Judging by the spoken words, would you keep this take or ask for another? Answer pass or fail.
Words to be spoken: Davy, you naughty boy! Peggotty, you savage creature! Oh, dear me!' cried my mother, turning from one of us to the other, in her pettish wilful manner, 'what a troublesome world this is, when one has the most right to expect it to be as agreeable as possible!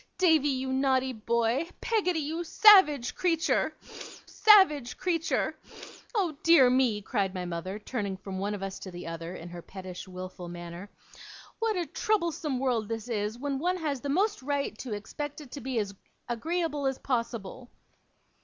fail